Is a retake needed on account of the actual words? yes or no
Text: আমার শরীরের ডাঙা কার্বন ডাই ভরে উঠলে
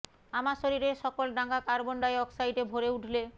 yes